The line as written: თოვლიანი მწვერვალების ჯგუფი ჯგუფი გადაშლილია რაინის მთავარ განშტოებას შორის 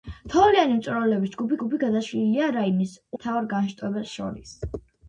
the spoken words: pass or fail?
pass